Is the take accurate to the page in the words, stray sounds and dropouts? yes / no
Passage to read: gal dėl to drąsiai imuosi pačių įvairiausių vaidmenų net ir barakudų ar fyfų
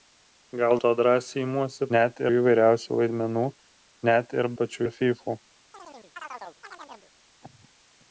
no